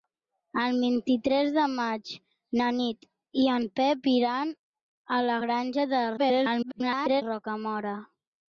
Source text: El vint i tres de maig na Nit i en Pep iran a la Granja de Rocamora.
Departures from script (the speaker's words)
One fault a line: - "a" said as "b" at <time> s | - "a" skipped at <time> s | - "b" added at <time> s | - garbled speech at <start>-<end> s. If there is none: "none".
- garbled speech at 6.2-7.2 s